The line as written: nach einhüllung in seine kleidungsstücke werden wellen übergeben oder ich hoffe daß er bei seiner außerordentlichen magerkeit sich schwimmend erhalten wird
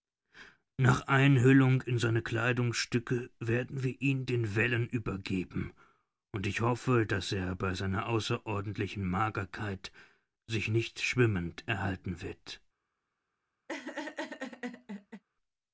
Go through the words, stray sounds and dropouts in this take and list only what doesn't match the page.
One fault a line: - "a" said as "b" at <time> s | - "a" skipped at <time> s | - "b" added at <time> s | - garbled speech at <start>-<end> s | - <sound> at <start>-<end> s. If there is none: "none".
- "wir ihn den" added at 3.8 s
- "oder" said as "und" at 6.3 s
- "nicht" added at 10.7 s
- laugh at 13.7-15.2 s